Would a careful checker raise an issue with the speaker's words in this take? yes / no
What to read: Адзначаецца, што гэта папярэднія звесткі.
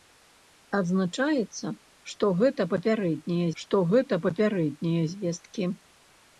yes